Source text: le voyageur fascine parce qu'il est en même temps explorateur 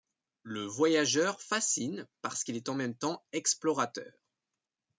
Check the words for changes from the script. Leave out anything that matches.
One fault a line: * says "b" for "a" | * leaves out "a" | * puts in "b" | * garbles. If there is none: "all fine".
all fine